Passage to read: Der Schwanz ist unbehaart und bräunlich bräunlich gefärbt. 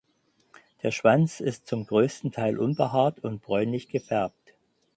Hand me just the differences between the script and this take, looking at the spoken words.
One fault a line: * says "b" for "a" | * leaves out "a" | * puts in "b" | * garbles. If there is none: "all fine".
* puts in "zum größten Teil"
* leaves out "bräunlich"